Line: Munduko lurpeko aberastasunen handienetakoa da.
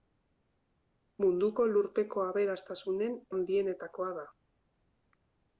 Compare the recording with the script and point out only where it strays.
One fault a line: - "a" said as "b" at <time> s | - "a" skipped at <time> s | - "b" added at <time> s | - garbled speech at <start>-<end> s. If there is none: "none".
none